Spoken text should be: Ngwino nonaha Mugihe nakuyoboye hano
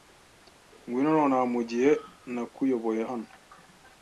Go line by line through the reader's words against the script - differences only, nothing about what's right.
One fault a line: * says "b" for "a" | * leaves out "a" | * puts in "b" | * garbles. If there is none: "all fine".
all fine